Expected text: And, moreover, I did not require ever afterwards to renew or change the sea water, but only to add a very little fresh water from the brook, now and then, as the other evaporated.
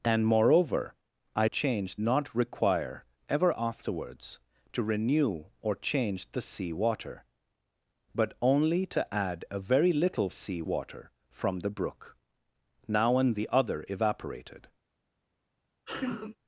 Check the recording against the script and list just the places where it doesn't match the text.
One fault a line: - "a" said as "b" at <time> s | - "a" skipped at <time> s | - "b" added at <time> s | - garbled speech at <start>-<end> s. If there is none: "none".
- "did" said as "change" at 1.4 s
- "fresh" said as "sea" at 10.3 s
- "then as" skipped at 13.3 s